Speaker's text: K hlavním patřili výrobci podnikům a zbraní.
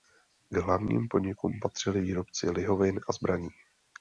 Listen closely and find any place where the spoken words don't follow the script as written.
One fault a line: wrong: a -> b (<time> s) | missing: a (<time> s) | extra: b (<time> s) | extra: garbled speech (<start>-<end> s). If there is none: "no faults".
extra: podnikům (1.1 s)
wrong: podnikům -> lihovin (2.5 s)